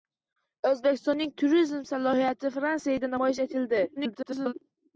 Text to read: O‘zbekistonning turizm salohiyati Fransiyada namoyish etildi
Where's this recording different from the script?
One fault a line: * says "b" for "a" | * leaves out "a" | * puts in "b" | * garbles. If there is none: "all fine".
* garbles